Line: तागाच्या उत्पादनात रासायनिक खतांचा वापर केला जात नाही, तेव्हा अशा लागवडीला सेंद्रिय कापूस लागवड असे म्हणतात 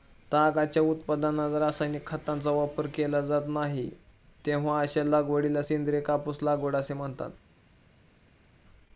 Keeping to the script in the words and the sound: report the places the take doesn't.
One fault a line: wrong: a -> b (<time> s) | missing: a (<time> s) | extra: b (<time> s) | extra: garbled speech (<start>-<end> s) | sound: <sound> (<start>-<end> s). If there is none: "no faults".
no faults